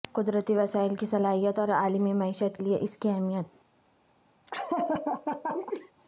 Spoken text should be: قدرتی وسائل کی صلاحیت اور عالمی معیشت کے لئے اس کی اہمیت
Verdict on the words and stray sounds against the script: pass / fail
fail